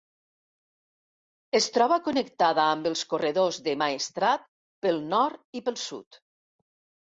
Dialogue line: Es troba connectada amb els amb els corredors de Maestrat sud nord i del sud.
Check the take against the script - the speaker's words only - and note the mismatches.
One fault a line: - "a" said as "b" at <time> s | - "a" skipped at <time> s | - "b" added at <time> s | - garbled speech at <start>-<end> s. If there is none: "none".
- "amb els" skipped at 3.0 s
- "sud" said as "pel" at 4.9 s
- "del" said as "pel" at 5.7 s